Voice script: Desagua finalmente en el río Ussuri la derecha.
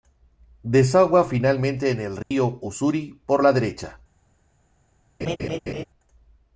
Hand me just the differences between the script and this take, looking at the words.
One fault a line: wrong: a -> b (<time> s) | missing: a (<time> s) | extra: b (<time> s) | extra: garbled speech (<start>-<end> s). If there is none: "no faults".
extra: por (3.3 s)